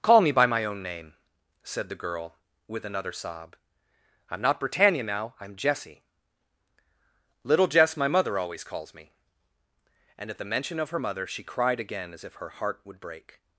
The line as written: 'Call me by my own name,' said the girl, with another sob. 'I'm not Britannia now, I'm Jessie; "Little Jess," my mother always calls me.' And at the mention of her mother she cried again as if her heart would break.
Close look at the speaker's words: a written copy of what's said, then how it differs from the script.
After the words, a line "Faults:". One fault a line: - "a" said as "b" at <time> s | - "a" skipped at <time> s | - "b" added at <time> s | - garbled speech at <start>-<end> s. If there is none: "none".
'Call me by my own name,' said the girl, with another sob. 'I'm not Britannia now, I'm Jessie; "Little Jess," my mother always calls me.' And at the mention of her mother she cried again as if her heart would break.
Faults:
none